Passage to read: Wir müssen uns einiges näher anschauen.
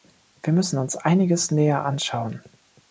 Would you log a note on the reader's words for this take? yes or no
no